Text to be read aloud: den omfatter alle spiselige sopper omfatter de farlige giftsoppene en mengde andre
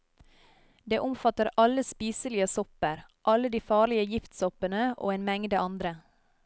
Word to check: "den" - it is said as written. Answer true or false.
false